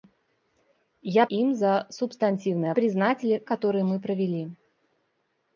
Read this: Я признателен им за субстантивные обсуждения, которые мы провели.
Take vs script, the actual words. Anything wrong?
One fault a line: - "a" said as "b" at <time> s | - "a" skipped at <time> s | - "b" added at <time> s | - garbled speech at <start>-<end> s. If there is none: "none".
- "признателен" skipped at 1.3 s
- "обсуждения" said as "признателен" at 2.7 s